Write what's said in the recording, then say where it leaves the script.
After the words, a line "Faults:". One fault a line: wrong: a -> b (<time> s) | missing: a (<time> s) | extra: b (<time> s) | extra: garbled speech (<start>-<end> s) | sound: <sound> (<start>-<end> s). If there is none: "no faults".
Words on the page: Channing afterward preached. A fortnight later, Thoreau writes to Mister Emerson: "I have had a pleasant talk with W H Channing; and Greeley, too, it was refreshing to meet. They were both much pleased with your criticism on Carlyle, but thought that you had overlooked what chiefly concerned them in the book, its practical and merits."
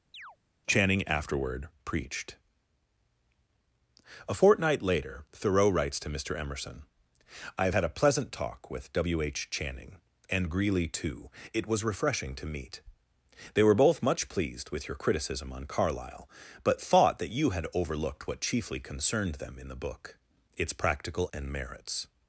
Channing afterward preached. A fortnight later, Thoreau writes to Mister Emerson: "I have had a pleasant talk with W H Channing; and Greeley, too, it was refreshing to meet. They were both much pleased with your criticism on Carlyle, but thought that you had overlooked what chiefly concerned them in the book, its practical and merits."
Faults:
sound: chirp (0.1-0.4 s)